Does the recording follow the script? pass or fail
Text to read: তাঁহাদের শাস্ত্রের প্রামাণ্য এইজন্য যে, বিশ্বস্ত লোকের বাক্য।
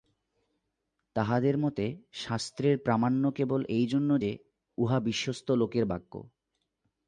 fail